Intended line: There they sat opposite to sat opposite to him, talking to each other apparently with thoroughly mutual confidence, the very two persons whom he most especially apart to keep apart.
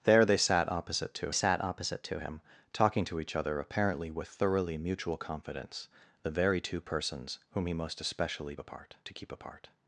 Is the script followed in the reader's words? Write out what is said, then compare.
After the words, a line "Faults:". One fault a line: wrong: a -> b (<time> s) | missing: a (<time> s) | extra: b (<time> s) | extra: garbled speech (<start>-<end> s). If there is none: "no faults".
There they sat opposite to sat opposite to him, talking to each other apparently with thoroughly mutual confidence, the very two persons whom he most especially apart to keep apart.
Faults:
no faults